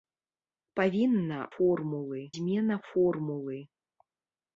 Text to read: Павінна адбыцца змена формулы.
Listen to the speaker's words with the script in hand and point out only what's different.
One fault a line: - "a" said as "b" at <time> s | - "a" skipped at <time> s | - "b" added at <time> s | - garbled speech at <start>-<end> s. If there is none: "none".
- "адбыцца" said as "формулы" at 1.6 s